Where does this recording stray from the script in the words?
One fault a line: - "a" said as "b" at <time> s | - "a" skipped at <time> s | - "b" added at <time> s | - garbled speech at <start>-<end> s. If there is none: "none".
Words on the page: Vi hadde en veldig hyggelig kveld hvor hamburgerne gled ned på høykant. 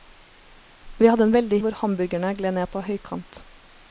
- "hyggelig kveld" skipped at 1.6 s